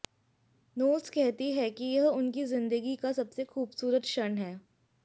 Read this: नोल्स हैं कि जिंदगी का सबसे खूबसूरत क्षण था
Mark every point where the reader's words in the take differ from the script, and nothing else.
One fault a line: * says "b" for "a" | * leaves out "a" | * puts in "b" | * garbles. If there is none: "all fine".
* puts in "कहती"
* puts in "यह उनकी"
* says "है" for "था"